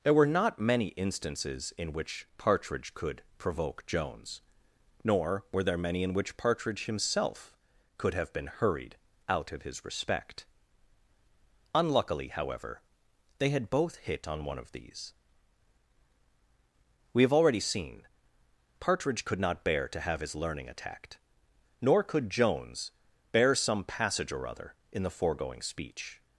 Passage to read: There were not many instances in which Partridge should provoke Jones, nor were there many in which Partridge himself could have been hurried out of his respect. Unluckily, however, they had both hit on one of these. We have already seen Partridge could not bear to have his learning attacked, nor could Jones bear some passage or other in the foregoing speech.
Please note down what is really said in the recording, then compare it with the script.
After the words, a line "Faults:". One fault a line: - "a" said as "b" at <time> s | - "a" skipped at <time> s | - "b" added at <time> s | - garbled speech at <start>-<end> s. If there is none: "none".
There were not many instances in which Partridge could provoke Jones, nor were there many in which Partridge himself could have been hurried out of his respect. Unluckily, however, they had both hit on one of these. We have already seen Partridge could not bear to have his learning attacked, nor could Jones bear some passage or other in the foregoing speech.
Faults:
- "should" said as "could" at 3.0 s